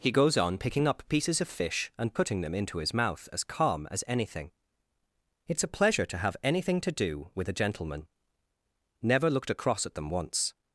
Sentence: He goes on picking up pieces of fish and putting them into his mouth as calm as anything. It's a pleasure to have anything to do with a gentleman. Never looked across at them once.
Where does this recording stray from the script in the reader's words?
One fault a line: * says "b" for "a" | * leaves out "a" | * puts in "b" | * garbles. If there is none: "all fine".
all fine